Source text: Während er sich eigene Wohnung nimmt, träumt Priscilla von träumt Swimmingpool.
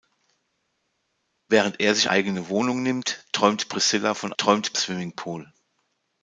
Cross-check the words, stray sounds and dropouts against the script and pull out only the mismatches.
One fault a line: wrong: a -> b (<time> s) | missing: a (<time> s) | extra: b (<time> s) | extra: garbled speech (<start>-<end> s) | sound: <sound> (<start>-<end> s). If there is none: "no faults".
no faults